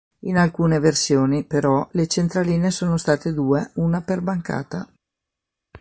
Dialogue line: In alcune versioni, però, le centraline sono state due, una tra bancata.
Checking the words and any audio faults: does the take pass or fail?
fail